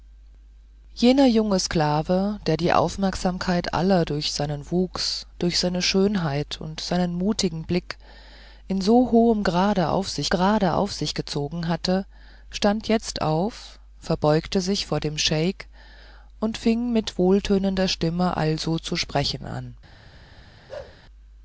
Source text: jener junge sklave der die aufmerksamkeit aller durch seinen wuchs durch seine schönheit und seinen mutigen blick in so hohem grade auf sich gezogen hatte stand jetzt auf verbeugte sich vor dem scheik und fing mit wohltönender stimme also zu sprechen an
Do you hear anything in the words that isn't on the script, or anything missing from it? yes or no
yes